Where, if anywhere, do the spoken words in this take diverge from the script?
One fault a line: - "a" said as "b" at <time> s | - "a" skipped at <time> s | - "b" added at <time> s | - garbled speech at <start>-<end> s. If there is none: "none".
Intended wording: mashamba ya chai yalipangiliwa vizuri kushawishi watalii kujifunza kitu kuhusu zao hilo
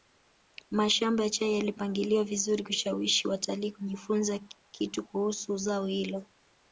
none